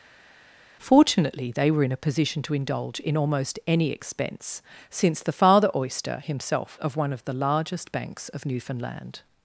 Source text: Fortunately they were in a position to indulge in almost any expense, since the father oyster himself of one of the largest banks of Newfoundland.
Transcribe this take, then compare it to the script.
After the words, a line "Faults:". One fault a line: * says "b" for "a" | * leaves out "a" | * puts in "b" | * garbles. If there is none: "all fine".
Fortunately they were in a position to indulge in almost any expense, since the father oyster himself of one of the largest banks of Newfoundland.
Faults:
all fine